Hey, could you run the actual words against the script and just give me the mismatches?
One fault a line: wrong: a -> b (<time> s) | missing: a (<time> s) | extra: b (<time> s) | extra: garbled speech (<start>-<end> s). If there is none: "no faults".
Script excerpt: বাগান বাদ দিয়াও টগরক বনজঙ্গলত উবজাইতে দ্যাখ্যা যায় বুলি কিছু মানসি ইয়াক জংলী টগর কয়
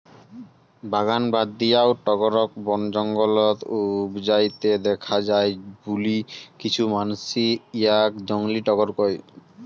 no faults